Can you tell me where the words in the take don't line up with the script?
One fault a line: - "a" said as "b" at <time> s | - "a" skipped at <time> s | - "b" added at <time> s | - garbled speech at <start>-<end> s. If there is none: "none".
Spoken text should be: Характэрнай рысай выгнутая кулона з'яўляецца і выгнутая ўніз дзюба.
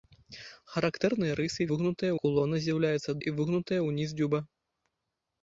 none